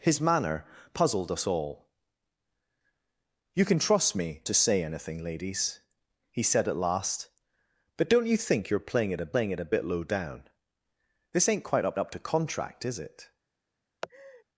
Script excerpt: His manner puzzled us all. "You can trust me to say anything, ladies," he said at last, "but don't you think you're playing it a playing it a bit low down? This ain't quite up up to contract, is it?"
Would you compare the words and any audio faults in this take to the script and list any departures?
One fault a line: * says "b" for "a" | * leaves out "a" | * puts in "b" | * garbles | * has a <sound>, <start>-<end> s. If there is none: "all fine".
* has a laugh, 14.0-14.4 s